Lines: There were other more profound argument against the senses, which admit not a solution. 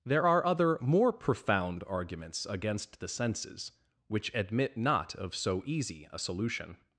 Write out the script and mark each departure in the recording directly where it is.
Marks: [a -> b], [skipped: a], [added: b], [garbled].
There [were -> are] other more profound [argument -> arguments] against the senses, which admit not [added: of so easy] a solution.